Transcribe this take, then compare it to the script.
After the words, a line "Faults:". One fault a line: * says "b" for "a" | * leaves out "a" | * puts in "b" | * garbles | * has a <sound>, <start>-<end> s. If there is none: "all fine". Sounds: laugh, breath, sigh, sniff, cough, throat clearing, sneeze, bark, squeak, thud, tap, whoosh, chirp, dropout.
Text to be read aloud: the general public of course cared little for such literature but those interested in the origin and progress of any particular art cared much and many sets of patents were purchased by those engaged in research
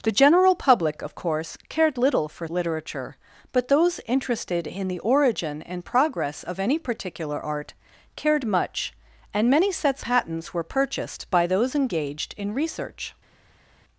the general public of course cared little for literature but those interested in the origin and progress of any particular art cared much and many sets patents were purchased by those engaged in research
Faults:
* leaves out "such"
* leaves out "of"